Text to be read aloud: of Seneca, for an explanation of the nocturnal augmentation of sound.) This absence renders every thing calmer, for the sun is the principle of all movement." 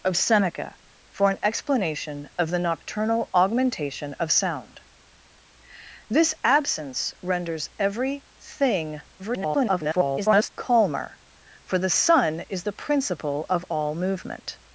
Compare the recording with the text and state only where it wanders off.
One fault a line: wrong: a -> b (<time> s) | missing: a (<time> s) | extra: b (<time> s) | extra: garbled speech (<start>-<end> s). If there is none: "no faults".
extra: garbled speech (9.2-10.5 s)